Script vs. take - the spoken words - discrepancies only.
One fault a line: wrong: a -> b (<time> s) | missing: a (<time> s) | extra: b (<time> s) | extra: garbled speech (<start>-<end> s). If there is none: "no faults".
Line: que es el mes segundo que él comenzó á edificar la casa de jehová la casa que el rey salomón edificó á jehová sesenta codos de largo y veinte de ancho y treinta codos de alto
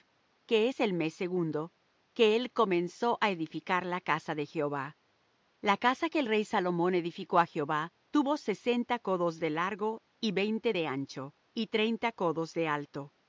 extra: tuvo (8.1 s)